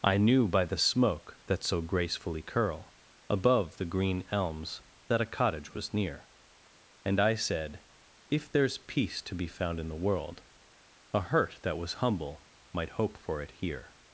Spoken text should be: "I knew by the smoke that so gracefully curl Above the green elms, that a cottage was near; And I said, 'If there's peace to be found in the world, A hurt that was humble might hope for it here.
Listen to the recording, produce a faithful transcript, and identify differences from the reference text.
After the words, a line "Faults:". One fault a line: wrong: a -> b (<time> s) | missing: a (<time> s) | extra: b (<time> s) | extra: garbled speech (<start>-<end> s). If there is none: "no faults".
"I knew by the smoke that so gracefully curl Above the green elms, that a cottage was near; And I said, 'If there's peace to be found in the world, A hurt that was humble might hope for it here.
Faults:
no faults